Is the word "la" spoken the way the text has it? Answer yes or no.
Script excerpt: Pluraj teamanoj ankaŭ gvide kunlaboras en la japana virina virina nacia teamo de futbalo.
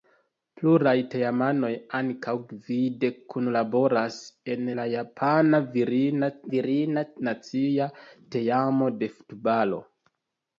yes